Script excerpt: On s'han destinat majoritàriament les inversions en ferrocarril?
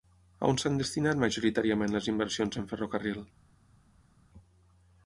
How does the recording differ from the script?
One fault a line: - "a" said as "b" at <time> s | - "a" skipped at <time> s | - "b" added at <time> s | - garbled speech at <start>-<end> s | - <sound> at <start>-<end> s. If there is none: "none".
none